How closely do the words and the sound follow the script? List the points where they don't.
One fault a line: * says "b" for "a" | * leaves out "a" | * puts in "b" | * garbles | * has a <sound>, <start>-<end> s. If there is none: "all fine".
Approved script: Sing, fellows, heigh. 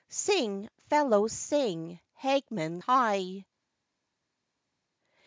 * puts in "sing Hagman"